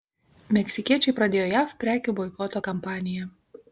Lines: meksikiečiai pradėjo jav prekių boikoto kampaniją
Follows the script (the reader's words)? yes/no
yes